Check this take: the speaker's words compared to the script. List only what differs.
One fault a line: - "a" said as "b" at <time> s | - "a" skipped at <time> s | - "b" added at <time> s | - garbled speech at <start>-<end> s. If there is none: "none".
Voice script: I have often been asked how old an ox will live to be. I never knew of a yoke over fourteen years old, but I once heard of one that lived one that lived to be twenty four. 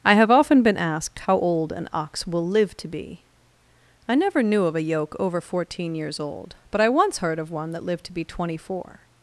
- "one that lived" skipped at 8.0 s